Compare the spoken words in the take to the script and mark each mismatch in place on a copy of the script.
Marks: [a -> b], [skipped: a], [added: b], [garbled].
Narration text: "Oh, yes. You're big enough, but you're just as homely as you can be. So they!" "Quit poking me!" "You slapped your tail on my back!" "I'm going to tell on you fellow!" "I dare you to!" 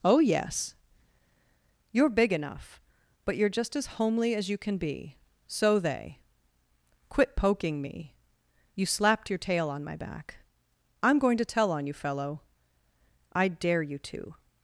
"Oh, yes. You're big enough, but you're just as homely as you can be. So they!" "Quit poking me!" "You slapped your tail on my back!" "I'm going to tell on you fellow!" "I dare you to!"